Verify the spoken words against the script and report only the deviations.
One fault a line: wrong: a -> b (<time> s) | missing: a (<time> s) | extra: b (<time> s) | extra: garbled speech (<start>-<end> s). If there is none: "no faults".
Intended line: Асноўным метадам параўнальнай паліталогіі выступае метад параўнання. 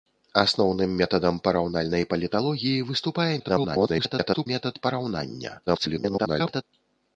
extra: garbled speech (3.4-4.5 s)
extra: garbled speech (5.7-6.6 s)